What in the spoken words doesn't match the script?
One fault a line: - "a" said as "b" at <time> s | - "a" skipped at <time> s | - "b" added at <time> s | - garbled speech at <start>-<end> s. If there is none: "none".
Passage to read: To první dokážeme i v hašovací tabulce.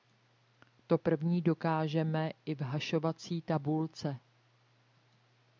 none